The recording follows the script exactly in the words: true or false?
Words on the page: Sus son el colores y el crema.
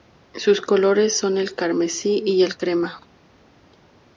false